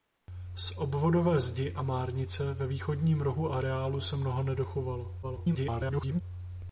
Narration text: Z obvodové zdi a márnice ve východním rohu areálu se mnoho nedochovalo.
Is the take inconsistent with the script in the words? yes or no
yes